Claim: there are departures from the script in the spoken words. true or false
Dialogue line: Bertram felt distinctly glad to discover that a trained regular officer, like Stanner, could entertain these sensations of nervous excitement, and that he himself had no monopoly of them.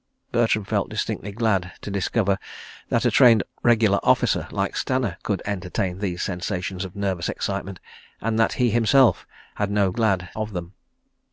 true